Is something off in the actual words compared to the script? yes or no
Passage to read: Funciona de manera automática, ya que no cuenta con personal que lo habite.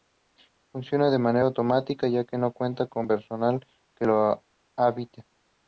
no